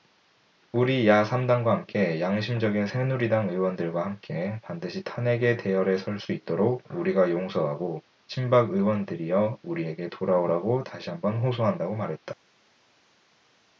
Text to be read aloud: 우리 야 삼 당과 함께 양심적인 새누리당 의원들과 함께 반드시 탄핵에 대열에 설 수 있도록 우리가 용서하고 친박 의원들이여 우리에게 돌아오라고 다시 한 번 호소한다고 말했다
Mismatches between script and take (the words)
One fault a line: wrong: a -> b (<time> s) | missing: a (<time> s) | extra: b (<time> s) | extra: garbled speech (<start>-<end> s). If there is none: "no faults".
no faults